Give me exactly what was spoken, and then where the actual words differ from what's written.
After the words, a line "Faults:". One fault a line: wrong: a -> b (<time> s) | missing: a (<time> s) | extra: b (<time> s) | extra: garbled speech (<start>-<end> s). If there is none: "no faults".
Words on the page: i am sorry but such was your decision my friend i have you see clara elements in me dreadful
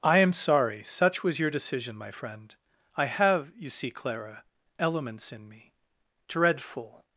i am sorry such was your decision my friend i have you see clara elements in me dreadful
Faults:
missing: but (0.8 s)